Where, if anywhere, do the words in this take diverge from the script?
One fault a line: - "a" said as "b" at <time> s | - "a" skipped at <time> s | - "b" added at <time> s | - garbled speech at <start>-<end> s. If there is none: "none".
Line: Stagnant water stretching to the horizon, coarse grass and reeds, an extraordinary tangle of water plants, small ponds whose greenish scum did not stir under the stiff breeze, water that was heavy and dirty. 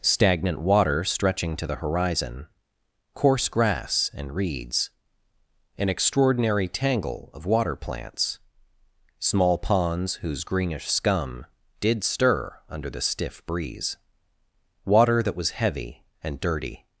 - "not" skipped at 12.0 s